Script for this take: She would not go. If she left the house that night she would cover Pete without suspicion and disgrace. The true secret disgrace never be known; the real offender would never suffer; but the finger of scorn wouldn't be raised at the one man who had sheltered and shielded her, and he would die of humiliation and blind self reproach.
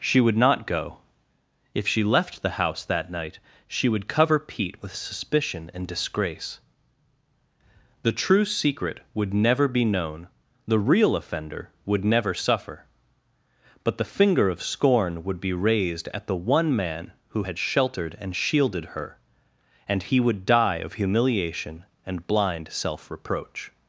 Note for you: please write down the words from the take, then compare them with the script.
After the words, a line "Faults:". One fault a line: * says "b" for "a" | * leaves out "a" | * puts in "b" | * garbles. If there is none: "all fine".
She would not go. If she left the house that night she would cover Pete with suspicion and disgrace. The true secret would never be known; the real offender would never suffer; but the finger of scorn would be raised at the one man who had sheltered and shielded her, and he would die of humiliation and blind self reproach.
Faults:
* says "with" for "without"
* says "would" for "disgrace"
* says "would" for "wouldn't"